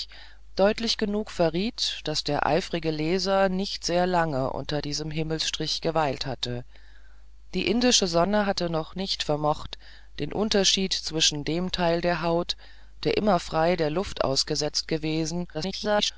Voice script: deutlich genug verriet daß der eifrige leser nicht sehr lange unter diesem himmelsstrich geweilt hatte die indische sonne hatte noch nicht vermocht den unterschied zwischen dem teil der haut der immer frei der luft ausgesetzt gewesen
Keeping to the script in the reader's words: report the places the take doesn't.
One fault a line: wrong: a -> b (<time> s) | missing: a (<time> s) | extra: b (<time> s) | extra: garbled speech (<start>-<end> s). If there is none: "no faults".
extra: garbled speech (15.5-16.1 s)